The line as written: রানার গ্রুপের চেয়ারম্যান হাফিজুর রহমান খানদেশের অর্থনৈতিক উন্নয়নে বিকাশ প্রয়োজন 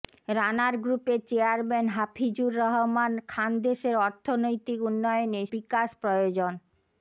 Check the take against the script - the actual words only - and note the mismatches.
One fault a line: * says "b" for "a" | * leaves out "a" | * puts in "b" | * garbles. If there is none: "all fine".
all fine